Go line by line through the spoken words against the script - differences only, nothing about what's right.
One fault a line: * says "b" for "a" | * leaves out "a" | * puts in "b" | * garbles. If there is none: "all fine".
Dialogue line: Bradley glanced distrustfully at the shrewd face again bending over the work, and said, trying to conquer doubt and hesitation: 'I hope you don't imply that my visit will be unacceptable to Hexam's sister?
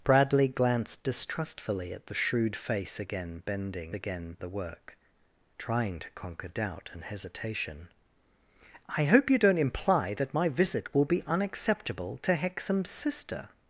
* says "again" for "over"
* leaves out "and said"